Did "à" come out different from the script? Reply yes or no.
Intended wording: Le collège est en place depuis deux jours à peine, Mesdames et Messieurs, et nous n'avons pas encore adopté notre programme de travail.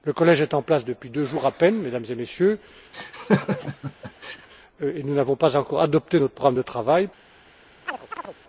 no